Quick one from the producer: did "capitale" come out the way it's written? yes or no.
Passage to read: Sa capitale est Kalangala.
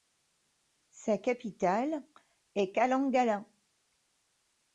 yes